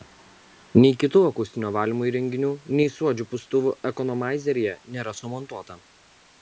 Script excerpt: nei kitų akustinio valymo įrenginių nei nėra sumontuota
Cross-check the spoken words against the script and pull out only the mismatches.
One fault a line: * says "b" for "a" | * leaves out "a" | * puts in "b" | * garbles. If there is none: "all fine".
* puts in "suodžių pūstuvų ekonomaizeryje"